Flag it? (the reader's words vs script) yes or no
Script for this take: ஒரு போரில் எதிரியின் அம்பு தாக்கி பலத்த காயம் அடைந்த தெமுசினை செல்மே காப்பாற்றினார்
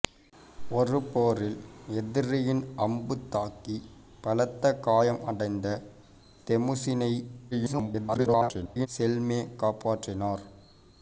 yes